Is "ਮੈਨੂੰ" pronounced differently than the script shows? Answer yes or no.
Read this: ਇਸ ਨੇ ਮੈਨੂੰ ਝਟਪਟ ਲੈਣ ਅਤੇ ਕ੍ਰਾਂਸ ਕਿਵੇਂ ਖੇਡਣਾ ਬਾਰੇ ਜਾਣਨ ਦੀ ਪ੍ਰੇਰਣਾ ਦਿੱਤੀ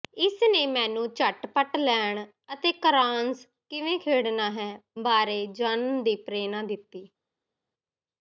no